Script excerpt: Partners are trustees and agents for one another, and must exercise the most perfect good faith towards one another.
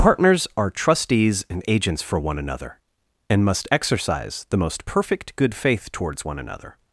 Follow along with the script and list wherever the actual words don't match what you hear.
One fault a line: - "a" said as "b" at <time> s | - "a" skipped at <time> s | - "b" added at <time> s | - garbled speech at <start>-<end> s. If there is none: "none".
none